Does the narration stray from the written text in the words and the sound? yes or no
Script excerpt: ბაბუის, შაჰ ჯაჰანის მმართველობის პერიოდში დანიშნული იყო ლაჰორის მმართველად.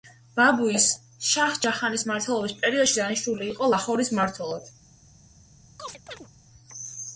yes